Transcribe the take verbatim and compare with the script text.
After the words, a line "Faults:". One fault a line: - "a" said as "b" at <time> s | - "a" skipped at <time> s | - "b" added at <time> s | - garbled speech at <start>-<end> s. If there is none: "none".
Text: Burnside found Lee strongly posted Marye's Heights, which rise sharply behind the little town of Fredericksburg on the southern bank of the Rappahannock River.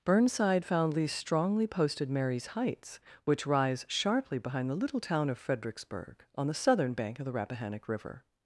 Burnside found Lee strongly posted Marye's Heights, which rise sharply behind the little town of Fredericksburg on the southern bank of the Rappahannock River.
Faults:
none